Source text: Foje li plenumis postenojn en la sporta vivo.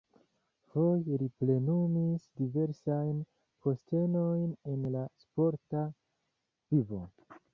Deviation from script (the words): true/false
true